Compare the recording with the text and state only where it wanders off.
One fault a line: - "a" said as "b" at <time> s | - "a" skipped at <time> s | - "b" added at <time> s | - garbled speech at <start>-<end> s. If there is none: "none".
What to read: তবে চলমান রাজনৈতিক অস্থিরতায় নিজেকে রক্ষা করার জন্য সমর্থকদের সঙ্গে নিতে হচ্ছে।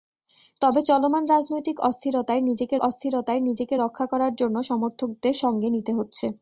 - "অস্থিরতায় নিজেকে" added at 2.8 s